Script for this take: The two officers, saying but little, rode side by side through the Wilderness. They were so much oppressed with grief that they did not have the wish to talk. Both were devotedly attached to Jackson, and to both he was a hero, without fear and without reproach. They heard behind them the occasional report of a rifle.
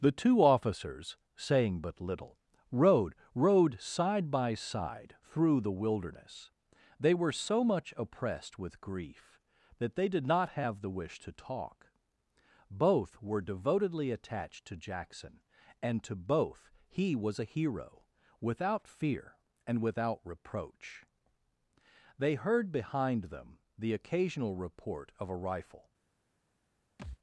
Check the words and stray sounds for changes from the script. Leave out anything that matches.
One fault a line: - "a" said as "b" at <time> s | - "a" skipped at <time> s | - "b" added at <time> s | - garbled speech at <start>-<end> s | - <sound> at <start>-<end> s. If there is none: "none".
- "rode" added at 3.4 s
- thud at 27.0-27.2 s